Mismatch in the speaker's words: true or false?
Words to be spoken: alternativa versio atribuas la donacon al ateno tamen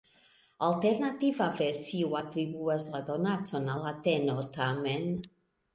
false